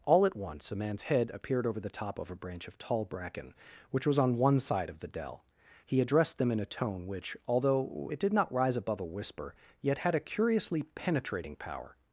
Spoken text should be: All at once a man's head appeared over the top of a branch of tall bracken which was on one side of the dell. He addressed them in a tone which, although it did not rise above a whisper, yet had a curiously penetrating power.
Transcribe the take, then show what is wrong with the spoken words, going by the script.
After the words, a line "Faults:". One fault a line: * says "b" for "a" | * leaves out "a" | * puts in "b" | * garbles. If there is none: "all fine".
All at once a man's head appeared over the top of a branch of tall bracken which was on one side of the dell. He addressed them in a tone which, although it did not rise above a whisper, yet had a curiously penetrating power.
Faults:
all fine